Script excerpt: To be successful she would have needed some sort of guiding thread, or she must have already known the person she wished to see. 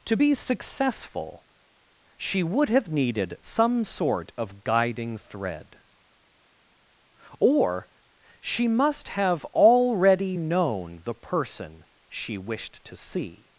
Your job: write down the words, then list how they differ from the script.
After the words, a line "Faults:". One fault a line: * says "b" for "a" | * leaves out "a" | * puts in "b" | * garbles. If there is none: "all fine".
To be successful she would have needed some sort of guiding thread, or she must have already known the person she wished to see.
Faults:
all fine